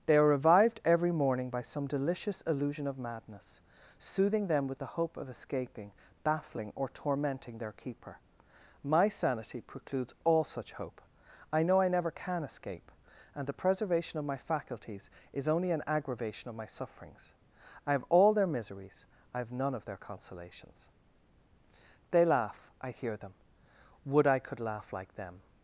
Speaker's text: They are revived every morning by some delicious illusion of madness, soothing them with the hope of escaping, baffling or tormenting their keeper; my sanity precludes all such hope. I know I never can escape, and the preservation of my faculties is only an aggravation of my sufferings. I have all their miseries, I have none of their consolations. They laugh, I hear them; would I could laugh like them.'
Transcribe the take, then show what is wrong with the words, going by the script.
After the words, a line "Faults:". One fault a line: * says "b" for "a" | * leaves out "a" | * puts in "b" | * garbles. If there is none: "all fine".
They are revived every morning by some delicious illusion of madness, soothing them with the hope of escaping, baffling or tormenting their keeper; my sanity precludes all such hope. I know I never can escape, and the preservation of my faculties is only an aggravation of my sufferings. I have all their miseries, I have none of their consolations. They laugh, I hear them; would I could laugh like them.'
Faults:
all fine